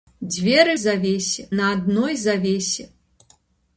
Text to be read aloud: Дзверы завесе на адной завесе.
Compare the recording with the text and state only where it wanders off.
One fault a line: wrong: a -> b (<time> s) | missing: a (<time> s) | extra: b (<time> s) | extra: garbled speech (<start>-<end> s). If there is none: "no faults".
no faults